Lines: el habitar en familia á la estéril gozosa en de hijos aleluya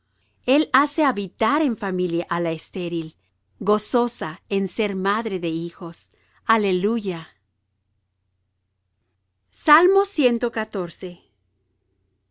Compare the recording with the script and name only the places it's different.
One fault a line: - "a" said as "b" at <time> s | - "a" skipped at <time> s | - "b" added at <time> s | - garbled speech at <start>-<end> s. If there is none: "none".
- "hace" added at 0.7 s
- "ser madre" added at 4.7 s